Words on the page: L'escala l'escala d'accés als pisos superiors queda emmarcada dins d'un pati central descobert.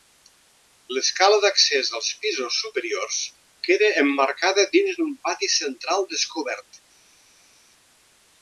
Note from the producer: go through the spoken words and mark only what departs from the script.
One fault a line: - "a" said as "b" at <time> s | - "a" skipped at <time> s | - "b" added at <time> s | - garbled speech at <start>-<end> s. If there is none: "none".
- "l'escala" skipped at 1.4 s